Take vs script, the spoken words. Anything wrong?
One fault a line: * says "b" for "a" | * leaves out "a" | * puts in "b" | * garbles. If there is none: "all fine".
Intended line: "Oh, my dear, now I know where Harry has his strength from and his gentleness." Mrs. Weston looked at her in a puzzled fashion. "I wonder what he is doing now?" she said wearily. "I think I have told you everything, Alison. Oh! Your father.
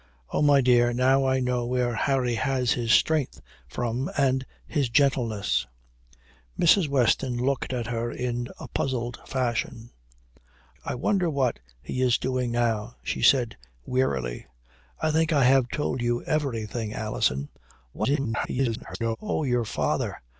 * garbles